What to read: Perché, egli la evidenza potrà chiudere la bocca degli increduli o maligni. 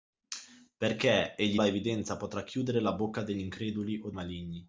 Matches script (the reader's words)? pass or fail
pass